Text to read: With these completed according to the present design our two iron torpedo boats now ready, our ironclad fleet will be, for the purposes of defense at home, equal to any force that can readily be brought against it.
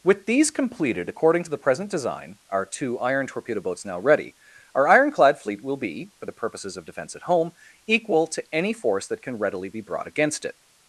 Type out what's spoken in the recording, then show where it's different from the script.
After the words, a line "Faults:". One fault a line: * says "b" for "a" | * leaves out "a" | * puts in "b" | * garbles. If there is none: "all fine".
With these completed according to the present design our two iron torpedo boats now ready, our ironclad fleet will be, for the purposes of defense at home, equal to any force that can readily be brought against it.
Faults:
all fine